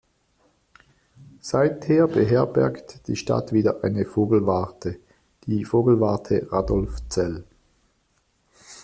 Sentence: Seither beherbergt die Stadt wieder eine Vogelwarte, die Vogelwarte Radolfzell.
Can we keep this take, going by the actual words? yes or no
yes